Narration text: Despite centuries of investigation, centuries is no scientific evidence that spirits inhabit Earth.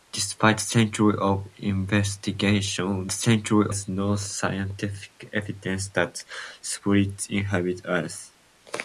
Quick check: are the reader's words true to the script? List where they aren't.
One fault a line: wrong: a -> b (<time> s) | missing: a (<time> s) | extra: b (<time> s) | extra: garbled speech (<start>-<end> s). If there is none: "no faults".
no faults